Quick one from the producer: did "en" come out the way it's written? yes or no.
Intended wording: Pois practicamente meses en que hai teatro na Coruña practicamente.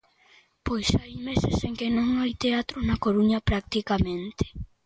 yes